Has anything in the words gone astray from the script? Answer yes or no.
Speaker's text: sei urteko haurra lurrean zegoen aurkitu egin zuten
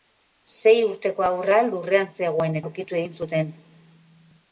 no